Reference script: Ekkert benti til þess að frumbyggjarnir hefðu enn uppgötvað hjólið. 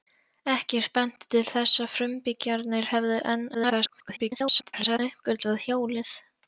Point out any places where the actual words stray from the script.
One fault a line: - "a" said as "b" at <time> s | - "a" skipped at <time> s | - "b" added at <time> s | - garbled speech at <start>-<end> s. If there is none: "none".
- garbled speech at 3.5-5.0 s